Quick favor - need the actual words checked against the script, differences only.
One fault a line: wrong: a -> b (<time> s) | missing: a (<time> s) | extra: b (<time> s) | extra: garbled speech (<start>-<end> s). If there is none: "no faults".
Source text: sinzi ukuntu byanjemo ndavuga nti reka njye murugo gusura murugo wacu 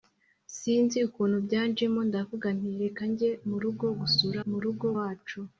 no faults